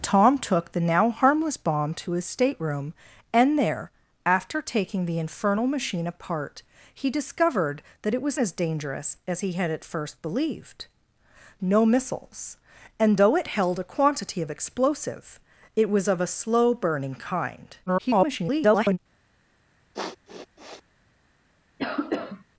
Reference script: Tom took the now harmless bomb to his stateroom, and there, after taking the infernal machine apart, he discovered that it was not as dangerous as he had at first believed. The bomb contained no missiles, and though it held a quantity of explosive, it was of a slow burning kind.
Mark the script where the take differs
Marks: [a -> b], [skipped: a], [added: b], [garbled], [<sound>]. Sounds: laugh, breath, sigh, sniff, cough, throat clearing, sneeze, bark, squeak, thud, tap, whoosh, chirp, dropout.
Tom took the now harmless bomb to his stateroom, and there, after taking the infernal machine apart, he discovered that it was [skipped: not] as dangerous as he had at first believed. [skipped: The bomb contained] no missiles, and though it held a quantity of explosive, it was of a slow burning kind. [garbled] [sniff] [cough]